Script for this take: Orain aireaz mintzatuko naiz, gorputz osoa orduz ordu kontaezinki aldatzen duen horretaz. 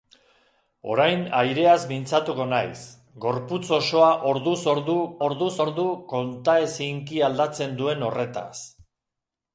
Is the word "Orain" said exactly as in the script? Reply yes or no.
yes